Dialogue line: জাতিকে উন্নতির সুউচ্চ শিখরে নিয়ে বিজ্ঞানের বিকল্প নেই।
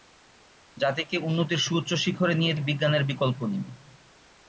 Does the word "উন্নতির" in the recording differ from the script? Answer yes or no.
no